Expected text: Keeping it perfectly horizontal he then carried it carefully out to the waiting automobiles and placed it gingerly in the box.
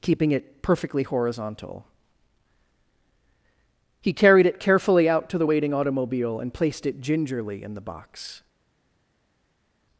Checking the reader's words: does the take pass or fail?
fail